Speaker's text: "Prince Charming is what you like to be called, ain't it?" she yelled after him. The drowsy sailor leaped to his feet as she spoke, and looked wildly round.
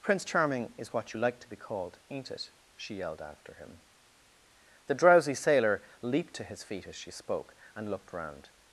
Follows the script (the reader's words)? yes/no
no